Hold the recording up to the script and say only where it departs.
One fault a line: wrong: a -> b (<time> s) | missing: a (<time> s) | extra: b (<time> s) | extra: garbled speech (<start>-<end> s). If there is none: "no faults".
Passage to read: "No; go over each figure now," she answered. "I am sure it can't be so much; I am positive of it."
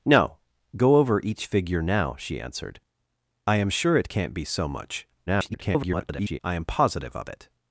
extra: garbled speech (5.3-6.4 s)